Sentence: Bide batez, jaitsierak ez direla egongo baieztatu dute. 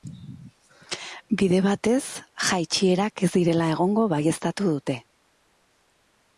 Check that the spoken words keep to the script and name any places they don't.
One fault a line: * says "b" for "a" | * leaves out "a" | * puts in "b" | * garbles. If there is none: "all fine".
all fine